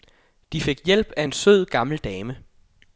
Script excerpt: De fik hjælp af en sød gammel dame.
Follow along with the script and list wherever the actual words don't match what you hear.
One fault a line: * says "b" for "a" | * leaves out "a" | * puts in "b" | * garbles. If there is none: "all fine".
all fine